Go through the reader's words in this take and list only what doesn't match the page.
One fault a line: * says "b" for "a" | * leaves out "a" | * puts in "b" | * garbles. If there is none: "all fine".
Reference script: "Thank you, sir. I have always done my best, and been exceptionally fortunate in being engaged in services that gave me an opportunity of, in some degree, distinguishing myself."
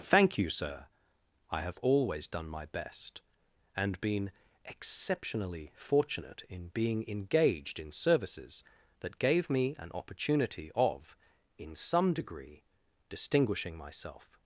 all fine